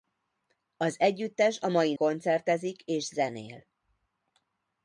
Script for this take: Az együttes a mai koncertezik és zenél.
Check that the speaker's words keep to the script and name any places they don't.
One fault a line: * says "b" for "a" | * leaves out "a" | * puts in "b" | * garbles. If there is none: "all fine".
all fine